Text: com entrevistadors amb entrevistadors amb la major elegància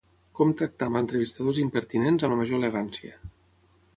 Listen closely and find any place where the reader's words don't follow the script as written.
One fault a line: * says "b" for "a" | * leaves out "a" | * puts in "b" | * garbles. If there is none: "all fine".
* says "tractar" for "entrevistadors"
* puts in "impertinents"